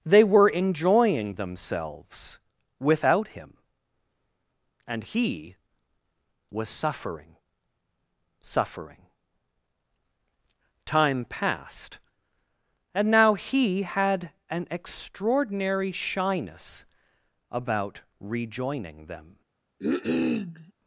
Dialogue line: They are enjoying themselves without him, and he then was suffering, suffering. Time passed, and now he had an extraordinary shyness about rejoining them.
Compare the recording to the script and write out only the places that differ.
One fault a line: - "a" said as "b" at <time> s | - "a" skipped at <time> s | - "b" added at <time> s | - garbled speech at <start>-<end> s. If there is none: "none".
- "are" said as "were" at 0.2 s
- "then" skipped at 5.6 s